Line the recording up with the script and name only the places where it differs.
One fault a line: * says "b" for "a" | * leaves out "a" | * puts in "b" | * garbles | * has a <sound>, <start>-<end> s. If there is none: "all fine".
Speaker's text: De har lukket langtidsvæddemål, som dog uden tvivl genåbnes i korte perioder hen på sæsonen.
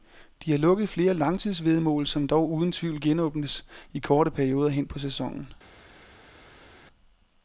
* puts in "flere"